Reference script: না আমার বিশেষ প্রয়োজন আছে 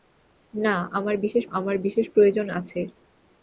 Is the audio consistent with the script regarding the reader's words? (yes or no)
no